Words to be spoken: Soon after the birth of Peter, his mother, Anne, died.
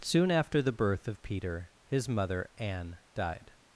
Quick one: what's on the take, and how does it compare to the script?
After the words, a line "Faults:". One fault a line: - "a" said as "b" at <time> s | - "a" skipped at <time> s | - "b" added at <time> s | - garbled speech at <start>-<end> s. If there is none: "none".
Soon after the birth of Peter, his mother, Anne, died.
Faults:
none